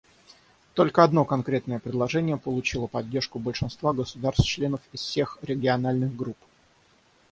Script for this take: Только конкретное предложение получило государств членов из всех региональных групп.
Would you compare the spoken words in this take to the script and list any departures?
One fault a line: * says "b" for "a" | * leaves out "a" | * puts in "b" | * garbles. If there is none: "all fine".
* puts in "одно"
* puts in "поддержку большинства"